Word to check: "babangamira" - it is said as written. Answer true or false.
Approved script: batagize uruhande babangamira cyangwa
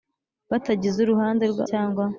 false